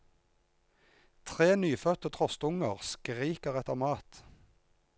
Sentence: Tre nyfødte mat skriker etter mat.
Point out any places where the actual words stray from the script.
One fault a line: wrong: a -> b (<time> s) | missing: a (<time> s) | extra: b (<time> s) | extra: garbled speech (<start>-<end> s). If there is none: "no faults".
wrong: mat -> trostunger (2.1 s)